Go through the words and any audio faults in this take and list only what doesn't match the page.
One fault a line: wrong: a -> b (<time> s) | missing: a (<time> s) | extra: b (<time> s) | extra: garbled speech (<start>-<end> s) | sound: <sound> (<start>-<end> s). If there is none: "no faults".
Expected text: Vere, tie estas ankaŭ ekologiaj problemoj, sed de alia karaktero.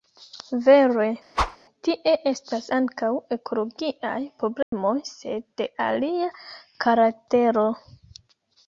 sound: whoosh (1.3-1.6 s)
sound: dropout (4.6-4.7 s)